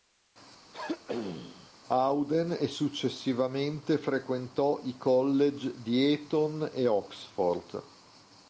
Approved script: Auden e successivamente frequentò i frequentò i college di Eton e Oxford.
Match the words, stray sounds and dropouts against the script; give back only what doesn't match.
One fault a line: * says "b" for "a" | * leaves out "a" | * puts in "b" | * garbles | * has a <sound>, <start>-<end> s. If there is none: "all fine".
* has a throat clearing, 0.7-1.7 s
* leaves out "frequentò i"